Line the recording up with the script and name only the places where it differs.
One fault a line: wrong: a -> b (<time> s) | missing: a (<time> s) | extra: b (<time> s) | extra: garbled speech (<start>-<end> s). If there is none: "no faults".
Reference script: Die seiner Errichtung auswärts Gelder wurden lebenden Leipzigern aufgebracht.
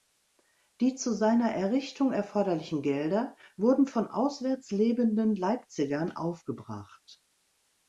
extra: zu (0.9 s)
wrong: auswärts -> erforderlichen (2.1 s)
extra: von auswärts (3.8 s)